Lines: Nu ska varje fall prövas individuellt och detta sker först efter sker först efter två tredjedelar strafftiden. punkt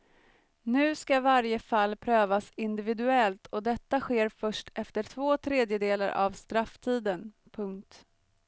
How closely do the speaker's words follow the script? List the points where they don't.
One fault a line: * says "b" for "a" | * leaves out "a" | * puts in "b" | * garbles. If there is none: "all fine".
* leaves out "sker först efter"
* puts in "av"